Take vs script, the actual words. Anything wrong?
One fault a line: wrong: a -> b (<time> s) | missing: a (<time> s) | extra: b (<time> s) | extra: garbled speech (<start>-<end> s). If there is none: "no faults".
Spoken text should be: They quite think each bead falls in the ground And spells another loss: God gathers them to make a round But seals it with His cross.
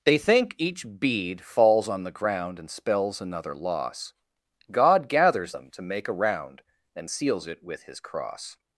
missing: quite (0.2 s)
wrong: in -> on (1.9 s)
wrong: But -> And (6.9 s)